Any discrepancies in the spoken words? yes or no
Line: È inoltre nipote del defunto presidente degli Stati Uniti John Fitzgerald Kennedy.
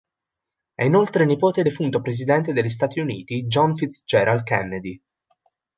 yes